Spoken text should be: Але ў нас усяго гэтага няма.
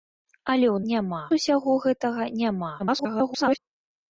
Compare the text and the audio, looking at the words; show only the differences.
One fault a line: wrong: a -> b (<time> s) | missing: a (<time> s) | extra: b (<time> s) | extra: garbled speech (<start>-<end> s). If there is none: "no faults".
wrong: нас -> няма (0.9 s)
extra: garbled speech (2.8-3.6 s)